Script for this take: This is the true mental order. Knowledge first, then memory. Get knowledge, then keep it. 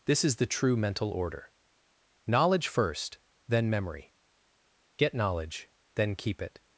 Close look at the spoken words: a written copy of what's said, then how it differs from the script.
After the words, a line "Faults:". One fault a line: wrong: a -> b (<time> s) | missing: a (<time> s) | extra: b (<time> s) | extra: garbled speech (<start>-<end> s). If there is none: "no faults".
This is the true mental order. Knowledge first, then memory. Get knowledge, then keep it.
Faults:
no faults